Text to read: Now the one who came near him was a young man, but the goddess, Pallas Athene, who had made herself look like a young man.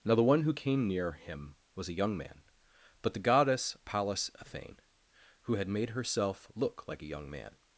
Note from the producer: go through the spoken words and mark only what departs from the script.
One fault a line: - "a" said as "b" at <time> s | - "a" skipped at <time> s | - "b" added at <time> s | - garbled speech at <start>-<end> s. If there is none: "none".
none